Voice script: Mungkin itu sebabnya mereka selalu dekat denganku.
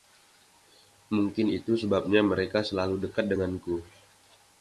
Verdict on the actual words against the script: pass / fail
pass